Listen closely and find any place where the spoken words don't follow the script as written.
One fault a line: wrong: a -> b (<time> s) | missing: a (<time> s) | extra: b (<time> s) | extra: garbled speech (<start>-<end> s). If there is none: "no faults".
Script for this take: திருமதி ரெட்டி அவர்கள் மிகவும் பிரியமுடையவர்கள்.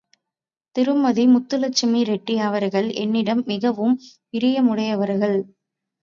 extra: முத்துலட்சுமி (1.2 s)
extra: என்னிடம் (3.0 s)